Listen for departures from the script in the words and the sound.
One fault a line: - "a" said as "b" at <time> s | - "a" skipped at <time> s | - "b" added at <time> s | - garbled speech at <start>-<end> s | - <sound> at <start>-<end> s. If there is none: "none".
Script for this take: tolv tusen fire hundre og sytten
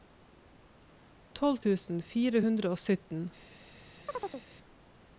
- chirp at 4.1-4.4 s